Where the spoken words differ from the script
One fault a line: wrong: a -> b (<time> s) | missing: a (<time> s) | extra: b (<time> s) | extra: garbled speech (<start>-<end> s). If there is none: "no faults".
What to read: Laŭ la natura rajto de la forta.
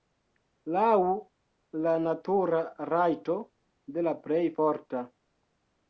extra: plej (4.2 s)